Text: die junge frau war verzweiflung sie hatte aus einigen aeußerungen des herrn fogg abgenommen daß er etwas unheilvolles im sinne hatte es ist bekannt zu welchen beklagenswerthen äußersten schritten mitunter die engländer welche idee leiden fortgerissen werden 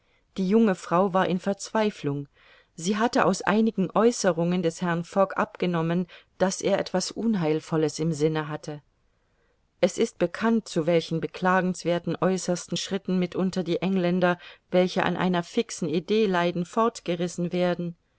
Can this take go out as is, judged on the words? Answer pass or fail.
fail